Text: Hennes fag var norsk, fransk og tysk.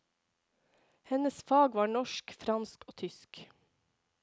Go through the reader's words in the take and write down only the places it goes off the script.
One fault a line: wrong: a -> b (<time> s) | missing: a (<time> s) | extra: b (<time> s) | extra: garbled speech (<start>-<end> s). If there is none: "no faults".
no faults